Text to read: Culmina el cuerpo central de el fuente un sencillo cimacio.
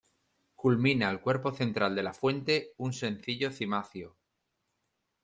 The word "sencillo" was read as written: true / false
true